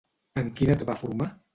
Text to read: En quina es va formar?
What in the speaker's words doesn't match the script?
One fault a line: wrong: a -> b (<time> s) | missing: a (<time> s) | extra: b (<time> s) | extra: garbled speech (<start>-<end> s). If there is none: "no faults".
no faults